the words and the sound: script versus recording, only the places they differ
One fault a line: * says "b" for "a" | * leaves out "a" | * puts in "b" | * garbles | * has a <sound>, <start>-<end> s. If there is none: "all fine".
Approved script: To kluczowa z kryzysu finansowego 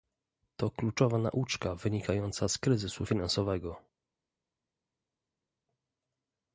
* puts in "nauczka wynikająca"